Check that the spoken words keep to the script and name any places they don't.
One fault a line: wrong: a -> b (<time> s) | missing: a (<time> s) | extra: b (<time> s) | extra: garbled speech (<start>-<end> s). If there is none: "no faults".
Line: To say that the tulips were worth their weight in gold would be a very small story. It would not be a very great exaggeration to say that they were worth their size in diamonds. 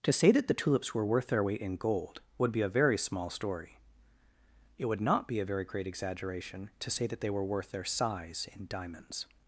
no faults